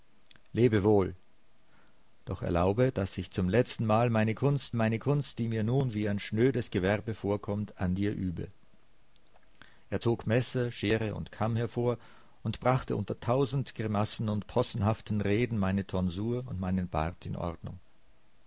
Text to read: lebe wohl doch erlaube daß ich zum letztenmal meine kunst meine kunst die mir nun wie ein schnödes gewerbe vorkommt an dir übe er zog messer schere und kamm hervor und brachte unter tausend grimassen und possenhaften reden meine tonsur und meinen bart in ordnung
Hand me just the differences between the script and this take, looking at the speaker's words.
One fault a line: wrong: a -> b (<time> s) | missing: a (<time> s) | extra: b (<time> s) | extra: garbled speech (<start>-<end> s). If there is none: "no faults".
no faults